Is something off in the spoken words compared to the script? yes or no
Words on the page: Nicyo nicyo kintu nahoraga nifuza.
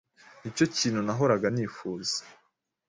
yes